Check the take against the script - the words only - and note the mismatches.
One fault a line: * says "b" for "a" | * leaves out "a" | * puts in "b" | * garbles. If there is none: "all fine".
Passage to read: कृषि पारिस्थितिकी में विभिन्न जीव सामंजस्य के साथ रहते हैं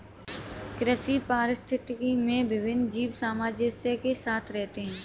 all fine